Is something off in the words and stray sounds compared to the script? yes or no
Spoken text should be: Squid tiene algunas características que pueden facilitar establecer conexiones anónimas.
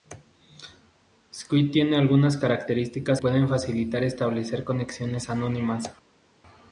yes